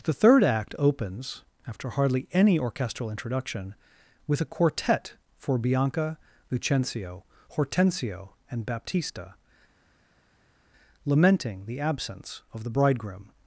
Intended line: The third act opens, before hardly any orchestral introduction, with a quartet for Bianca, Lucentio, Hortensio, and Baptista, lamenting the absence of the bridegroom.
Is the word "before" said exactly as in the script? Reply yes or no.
no